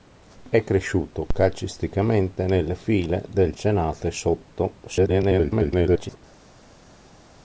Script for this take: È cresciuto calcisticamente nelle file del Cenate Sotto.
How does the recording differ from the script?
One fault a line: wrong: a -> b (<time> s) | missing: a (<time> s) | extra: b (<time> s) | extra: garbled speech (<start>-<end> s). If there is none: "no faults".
extra: garbled speech (4.9-6.2 s)